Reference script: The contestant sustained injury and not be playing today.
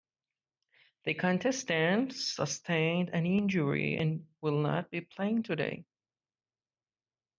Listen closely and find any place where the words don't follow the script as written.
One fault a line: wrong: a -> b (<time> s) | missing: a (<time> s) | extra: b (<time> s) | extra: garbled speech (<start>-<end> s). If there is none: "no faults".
extra: an (3.1 s)
extra: will (4.4 s)